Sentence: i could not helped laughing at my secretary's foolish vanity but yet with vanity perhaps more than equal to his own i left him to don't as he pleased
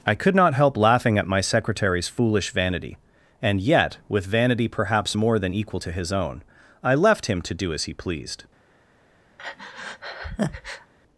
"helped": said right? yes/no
no